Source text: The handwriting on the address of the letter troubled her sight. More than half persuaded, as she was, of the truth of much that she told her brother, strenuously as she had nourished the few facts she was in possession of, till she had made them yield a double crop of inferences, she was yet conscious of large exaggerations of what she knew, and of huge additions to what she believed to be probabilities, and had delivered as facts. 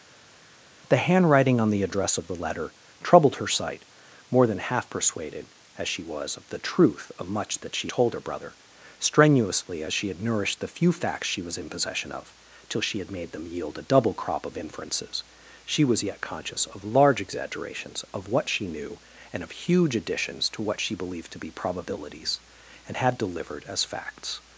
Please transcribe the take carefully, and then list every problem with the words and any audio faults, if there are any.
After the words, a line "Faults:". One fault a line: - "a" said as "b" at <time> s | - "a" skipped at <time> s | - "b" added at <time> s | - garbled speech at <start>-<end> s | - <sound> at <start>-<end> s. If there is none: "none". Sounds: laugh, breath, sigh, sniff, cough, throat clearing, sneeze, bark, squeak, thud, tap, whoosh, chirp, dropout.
The handwriting on the address of the letter troubled her sight. More than half persuaded, as she was, of the truth of much that she told her brother, strenuously as she had nourished the few facts she was in possession of, till she had made them yield a double crop of inferences, she was yet conscious of large exaggerations of what she knew, and of huge additions to what she believed to be probabilities, and had delivered as facts.
Faults:
none